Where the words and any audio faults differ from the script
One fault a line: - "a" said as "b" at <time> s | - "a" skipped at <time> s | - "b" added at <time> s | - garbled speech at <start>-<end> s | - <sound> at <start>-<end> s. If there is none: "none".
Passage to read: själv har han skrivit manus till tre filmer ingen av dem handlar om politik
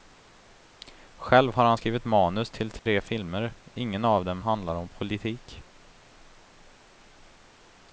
- dropout at 2.8-2.9 s